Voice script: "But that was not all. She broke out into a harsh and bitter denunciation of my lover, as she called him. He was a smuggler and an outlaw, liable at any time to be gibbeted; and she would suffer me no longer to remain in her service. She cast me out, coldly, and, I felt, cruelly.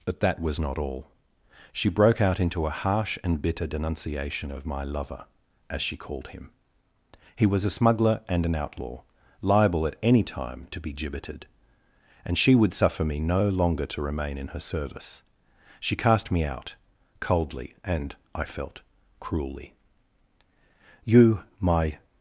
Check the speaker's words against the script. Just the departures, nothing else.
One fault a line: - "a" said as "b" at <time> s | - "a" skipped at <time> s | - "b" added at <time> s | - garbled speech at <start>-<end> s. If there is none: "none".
- "You my" added at 21.0 s